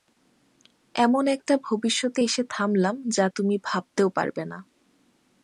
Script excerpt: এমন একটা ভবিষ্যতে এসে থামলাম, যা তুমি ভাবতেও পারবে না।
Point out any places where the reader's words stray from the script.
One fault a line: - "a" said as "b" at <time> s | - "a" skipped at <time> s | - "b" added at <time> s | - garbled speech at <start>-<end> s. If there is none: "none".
none